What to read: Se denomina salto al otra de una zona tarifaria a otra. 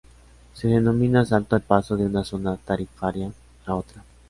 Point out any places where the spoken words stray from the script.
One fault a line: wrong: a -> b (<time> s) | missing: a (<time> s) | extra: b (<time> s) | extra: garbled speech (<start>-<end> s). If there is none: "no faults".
wrong: otra -> paso (1.6 s)